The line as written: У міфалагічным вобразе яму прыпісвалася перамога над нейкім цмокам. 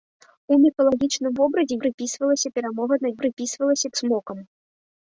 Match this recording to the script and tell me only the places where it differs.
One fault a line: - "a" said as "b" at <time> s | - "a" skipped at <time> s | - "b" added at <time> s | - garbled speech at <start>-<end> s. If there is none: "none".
- "яму" skipped at 1.8 s
- "нейкім" said as "прыпісвалася" at 3.2 s